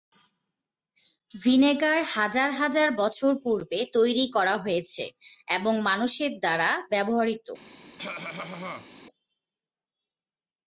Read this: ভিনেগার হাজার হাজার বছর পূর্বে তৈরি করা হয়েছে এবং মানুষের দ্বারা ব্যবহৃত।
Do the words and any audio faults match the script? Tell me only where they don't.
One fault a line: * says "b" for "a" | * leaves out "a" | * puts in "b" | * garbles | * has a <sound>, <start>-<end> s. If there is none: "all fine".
* has a cough, 8.0-8.9 s